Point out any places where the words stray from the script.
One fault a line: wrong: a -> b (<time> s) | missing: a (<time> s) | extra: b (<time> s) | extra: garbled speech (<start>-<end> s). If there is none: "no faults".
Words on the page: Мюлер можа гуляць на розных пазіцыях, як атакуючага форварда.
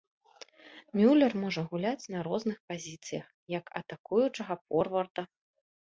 no faults